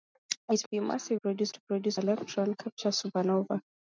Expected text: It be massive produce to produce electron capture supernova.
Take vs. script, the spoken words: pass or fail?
pass